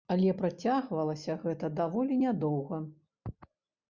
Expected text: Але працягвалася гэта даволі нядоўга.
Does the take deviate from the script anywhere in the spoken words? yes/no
no